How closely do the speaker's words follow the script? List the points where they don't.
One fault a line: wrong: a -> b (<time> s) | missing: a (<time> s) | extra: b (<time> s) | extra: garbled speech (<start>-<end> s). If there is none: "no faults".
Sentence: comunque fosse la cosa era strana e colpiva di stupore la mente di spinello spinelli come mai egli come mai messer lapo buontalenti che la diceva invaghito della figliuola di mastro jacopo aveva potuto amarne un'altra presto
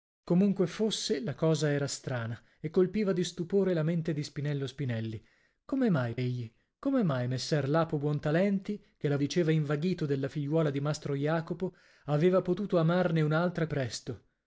no faults